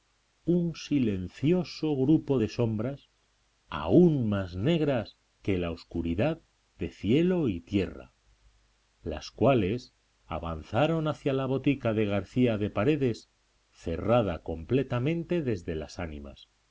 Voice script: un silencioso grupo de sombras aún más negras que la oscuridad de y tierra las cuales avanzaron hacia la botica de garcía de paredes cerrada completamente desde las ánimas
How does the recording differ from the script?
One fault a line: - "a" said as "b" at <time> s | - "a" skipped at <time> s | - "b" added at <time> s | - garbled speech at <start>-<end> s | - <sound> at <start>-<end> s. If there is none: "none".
- "cielo" added at 6.9 s